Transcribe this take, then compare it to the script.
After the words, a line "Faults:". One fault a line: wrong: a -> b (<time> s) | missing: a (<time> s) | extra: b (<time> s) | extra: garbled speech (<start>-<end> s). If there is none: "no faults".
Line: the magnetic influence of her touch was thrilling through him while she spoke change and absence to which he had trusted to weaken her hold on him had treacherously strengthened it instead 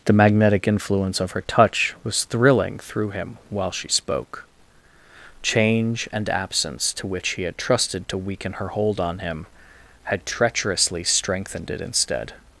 the magnetic influence of her touch was thrilling through him while she spoke change and absence to which he had trusted to weaken her hold on him had treacherously strengthened it instead
Faults:
no faults